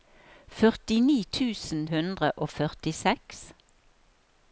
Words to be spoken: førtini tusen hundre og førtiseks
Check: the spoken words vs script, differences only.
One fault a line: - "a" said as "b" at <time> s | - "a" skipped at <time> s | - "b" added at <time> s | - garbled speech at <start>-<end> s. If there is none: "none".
none